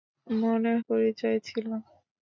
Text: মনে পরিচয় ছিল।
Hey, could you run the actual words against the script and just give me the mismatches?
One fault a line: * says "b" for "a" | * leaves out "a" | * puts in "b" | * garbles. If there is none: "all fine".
all fine